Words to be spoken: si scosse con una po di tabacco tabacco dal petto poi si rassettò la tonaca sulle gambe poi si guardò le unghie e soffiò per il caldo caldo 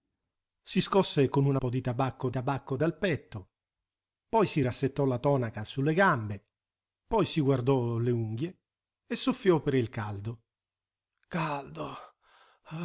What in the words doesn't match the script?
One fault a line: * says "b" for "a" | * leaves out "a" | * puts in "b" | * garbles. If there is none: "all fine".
all fine